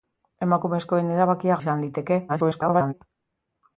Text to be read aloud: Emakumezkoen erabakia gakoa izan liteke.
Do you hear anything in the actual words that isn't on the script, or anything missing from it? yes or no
yes